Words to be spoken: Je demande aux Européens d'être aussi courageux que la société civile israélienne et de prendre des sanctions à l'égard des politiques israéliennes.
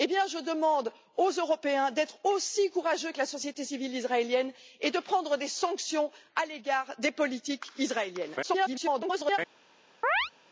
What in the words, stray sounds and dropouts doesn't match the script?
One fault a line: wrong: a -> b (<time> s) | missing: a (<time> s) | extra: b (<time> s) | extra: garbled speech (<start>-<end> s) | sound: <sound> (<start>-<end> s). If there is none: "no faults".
extra: garbled speech (8.4-9.4 s)
sound: chirp (10.0-10.3 s)